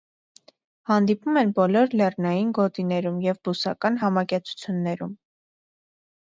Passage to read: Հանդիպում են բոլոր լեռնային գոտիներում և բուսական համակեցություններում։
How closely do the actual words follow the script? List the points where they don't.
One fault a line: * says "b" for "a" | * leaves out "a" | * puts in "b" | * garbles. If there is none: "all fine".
all fine